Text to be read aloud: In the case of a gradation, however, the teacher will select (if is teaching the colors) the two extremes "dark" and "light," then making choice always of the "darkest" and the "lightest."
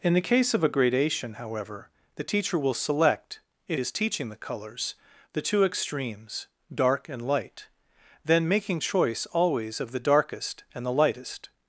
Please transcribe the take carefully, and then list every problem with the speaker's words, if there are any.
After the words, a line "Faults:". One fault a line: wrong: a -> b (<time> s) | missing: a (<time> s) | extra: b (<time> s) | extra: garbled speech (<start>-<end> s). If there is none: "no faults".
In the case of a gradation, however, the teacher will select (if is teaching the colors) the two extremes "dark" and "light," then making choice always of the "darkest" and the "lightest."
Faults:
no faults